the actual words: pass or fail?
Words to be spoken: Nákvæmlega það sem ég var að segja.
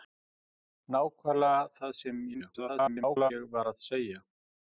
fail